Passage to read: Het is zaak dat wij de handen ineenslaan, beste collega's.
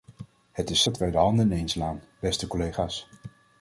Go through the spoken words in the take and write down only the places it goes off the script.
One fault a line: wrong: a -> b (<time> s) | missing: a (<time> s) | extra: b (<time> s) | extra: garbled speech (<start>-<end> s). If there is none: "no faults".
missing: zaak (0.8 s)